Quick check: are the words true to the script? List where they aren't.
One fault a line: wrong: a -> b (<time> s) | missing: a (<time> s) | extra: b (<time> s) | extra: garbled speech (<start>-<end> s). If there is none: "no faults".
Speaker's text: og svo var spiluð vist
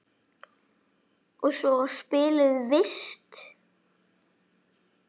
no faults